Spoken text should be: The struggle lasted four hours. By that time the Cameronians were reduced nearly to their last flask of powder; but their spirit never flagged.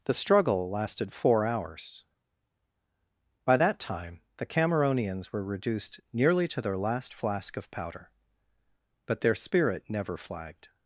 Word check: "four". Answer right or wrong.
right